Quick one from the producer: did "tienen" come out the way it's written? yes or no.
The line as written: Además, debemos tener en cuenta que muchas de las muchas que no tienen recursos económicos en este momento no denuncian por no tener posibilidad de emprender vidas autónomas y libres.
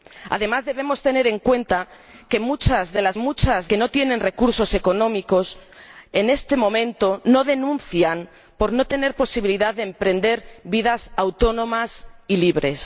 yes